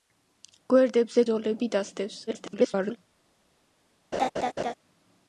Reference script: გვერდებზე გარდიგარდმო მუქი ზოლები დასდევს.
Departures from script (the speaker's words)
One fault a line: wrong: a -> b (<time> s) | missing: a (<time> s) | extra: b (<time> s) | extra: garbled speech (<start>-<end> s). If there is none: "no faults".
missing: გარდიგარდმო მუქი (1.2 s)
extra: garbled speech (2.3-3.0 s)